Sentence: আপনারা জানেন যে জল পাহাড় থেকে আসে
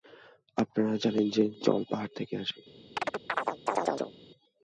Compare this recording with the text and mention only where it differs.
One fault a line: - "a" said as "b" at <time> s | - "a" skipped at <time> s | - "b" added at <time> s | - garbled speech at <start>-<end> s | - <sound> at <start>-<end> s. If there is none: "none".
- chirp at 3.0-4.2 s